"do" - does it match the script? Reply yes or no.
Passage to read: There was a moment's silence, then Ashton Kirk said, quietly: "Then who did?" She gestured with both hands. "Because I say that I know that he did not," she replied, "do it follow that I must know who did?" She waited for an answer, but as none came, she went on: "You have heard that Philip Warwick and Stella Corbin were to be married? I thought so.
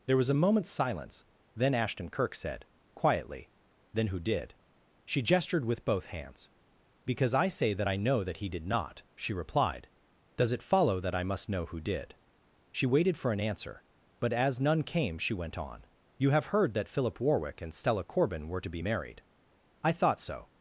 no